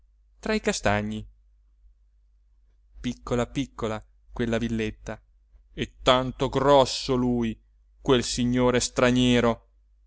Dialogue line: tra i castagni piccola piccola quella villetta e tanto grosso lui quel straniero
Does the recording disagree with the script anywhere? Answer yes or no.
yes